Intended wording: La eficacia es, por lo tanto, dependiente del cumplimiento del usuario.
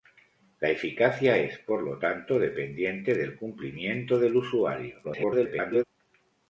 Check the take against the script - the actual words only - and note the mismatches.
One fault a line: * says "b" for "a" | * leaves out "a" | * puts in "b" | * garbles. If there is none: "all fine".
* garbles